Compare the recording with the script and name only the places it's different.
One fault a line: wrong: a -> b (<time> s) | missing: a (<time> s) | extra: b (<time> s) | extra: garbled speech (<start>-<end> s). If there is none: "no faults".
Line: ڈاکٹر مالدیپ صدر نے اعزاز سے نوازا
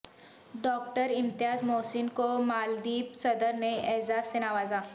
extra: امتیاز محسن کو (1.1 s)